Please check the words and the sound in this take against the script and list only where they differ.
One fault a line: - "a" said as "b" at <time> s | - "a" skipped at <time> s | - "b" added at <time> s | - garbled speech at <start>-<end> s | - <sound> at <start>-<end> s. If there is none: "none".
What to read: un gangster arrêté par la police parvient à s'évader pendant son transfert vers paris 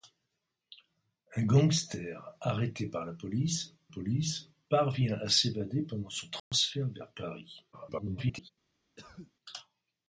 - "police" added at 3.9 s
- dropout at 6.4-6.5 s
- garbled speech at 7.7-8.5 s
- cough at 9.0-9.3 s